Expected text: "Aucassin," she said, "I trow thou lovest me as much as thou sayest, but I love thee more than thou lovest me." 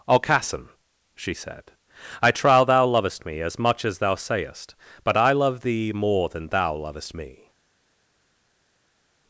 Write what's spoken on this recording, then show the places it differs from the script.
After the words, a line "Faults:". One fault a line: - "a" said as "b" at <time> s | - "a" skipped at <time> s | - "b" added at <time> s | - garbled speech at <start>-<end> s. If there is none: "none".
"Aucassin," she said, "I trow thou lovest me as much as thou sayest, but I love thee more than thou lovest me."
Faults:
none